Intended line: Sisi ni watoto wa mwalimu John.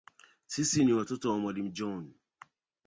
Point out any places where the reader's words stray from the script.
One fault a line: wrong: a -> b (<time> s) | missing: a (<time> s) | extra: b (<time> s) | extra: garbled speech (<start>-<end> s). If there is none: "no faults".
no faults